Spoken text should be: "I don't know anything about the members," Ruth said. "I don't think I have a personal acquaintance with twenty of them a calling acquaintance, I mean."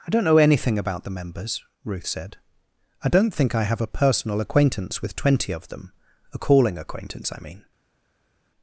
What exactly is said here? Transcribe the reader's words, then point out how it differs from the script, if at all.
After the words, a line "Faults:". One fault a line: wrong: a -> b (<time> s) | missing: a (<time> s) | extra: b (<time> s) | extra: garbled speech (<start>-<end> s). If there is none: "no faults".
"I don't know anything about the members," Ruth said. "I don't think I have a personal acquaintance with twenty of them a calling acquaintance, I mean."
Faults:
no faults